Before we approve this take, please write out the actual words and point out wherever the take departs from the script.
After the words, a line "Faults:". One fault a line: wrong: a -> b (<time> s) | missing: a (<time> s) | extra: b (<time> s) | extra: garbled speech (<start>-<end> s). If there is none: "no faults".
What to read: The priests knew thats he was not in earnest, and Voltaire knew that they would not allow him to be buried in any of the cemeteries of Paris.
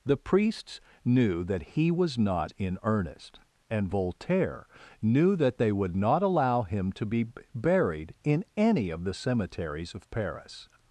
The priests knew that he was not in earnest, and Voltaire knew that they would not allow him to be buried in any of the cemeteries of Paris.
Faults:
wrong: thats -> that (1.4 s)